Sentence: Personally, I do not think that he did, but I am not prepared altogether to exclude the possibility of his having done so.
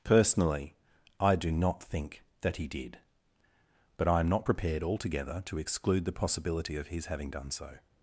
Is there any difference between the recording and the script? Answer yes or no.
no